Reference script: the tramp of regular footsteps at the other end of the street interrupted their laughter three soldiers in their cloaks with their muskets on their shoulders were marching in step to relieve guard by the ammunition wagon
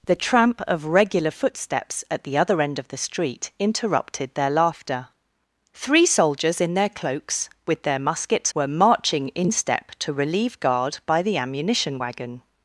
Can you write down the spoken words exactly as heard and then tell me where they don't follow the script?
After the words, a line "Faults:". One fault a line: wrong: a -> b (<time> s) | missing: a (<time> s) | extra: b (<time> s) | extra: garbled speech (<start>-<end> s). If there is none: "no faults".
the tramp of regular footsteps at the other end of the street interrupted their laughter three soldiers in their cloaks with their muskets were marching in step to relieve guard by the ammunition wagon
Faults:
missing: on their shoulders (8.5 s)